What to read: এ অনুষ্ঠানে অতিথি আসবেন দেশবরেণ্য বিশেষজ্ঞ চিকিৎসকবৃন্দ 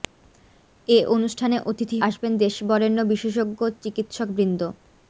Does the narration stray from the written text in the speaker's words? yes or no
no